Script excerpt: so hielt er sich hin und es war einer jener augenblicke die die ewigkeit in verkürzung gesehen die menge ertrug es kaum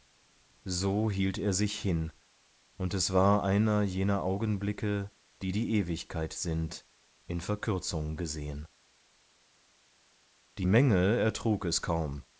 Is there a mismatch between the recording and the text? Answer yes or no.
yes